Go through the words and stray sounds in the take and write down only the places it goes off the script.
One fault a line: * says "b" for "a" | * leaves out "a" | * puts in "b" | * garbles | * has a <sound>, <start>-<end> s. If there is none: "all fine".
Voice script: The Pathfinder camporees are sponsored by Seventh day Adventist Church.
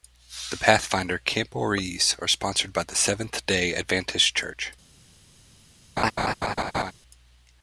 * puts in "the"
* has a laugh, 6.0-6.9 s